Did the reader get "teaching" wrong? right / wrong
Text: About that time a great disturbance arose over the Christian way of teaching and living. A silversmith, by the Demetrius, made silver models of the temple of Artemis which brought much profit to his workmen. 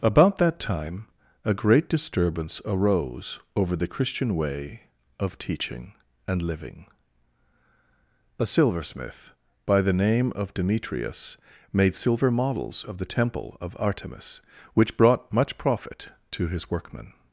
right